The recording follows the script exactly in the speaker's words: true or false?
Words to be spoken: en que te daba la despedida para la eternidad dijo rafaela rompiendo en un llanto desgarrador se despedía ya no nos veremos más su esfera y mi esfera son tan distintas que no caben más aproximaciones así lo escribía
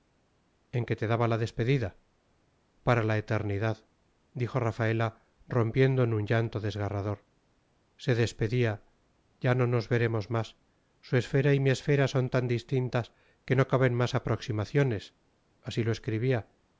true